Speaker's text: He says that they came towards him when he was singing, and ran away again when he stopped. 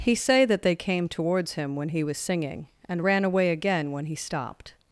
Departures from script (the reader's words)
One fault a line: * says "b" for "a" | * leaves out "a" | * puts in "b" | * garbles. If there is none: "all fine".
* says "say" for "says"